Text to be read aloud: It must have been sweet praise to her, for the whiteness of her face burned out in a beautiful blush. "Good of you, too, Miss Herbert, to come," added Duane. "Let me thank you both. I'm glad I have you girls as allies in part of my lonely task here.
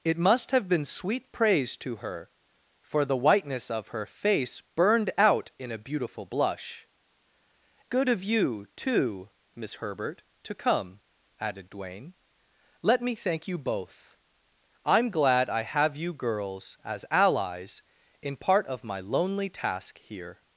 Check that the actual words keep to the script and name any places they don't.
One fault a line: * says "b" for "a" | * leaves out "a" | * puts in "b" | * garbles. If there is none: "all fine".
all fine